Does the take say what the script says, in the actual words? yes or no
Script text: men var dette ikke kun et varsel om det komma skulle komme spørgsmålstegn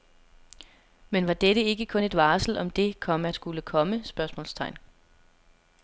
yes